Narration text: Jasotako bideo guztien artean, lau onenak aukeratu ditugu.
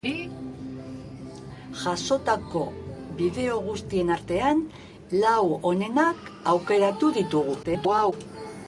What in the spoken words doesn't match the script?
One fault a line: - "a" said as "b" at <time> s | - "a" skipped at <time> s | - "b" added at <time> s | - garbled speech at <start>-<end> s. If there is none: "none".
- garbled speech at 7.6-8.1 s